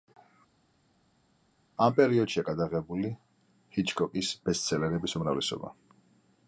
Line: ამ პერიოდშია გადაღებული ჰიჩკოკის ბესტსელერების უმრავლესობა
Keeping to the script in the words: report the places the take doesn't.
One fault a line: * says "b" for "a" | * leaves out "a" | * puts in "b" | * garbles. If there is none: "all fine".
all fine